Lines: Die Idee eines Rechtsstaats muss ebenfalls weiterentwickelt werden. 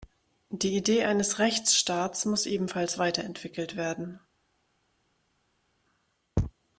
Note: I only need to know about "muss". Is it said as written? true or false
true